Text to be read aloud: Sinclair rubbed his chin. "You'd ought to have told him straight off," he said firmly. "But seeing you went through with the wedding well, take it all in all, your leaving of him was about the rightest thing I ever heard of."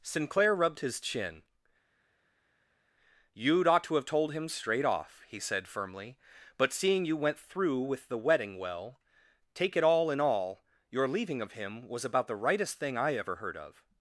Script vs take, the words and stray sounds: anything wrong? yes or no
no